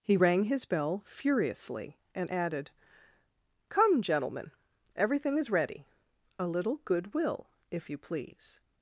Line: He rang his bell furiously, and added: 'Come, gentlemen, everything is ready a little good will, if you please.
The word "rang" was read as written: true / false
true